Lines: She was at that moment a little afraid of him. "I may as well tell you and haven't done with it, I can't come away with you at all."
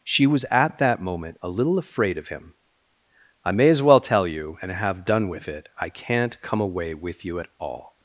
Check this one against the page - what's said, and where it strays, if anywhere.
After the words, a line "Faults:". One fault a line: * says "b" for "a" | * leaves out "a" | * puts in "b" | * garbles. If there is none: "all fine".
She was at that moment a little afraid of him. "I may as well tell you and have done with it, I can't come away with you at all."
Faults:
* says "have" for "haven't"